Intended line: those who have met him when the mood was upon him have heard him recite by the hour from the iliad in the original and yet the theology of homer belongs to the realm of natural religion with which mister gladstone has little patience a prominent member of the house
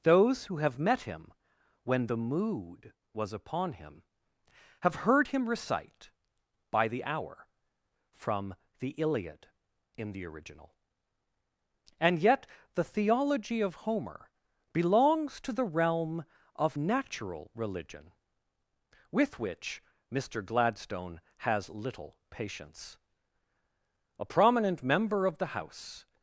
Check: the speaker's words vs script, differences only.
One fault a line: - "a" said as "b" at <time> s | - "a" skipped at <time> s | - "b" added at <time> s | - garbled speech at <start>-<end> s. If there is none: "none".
none